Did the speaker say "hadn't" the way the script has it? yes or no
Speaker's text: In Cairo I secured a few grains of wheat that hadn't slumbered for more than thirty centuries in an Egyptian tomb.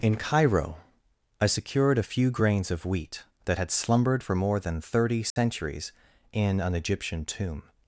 no